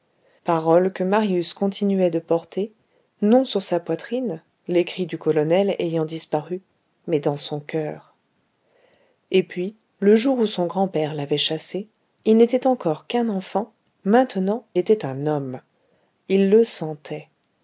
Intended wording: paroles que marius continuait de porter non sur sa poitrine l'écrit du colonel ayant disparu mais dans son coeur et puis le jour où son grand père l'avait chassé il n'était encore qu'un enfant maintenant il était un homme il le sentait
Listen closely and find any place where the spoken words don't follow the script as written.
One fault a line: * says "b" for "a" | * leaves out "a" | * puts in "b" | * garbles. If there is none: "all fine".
* leaves out "il"